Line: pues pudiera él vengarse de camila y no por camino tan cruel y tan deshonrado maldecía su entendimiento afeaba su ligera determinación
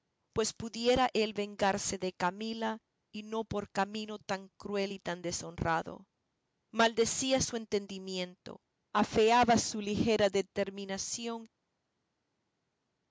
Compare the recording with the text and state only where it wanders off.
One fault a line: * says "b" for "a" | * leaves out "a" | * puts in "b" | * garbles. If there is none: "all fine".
all fine